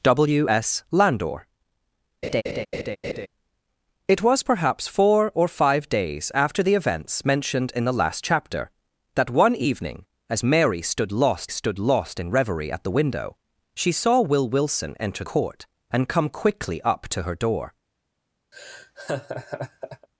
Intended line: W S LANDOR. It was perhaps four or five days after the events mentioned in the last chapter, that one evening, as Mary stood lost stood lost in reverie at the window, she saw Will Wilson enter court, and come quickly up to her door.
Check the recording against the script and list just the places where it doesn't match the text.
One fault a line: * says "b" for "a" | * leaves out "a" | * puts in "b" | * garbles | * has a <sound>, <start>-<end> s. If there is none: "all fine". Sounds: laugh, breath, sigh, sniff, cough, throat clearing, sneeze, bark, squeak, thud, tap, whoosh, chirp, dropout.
* has a laugh, 2.2-3.3 s
* has a laugh, 18.5-20.1 s